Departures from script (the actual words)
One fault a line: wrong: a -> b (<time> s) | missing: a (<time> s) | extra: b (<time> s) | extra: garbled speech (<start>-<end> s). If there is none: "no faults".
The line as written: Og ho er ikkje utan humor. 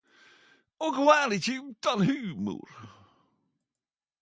no faults